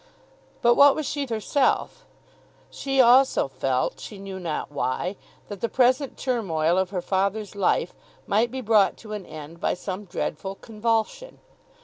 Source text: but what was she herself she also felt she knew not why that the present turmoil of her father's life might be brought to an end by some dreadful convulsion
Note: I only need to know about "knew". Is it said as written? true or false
true